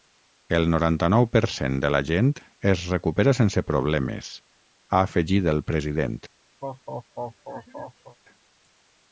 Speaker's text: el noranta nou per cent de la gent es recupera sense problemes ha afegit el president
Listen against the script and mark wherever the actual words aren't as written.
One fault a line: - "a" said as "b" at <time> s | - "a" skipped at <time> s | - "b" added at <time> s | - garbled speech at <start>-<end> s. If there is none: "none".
none